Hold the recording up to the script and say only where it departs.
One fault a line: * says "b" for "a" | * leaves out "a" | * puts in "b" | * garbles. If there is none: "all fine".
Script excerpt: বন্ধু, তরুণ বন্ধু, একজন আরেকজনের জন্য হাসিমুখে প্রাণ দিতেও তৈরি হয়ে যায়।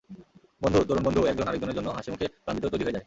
all fine